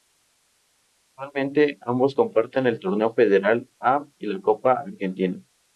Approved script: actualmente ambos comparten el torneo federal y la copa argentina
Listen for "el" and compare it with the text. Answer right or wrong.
right